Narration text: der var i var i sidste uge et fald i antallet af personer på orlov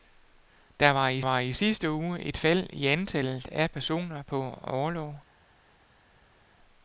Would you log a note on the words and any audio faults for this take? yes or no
no